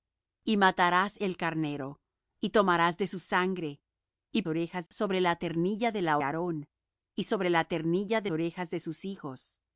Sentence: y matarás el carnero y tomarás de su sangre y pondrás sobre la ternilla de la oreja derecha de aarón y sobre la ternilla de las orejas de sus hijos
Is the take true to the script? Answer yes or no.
no